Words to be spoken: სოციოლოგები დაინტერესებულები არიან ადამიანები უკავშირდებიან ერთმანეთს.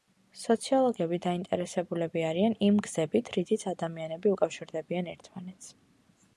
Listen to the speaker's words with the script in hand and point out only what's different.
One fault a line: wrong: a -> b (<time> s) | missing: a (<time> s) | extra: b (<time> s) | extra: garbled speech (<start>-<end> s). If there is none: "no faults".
extra: იმ გზებით რითიც (2.7 s)